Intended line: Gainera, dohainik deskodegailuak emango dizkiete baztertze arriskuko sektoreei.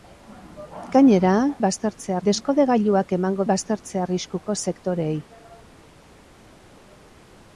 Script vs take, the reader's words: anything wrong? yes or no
yes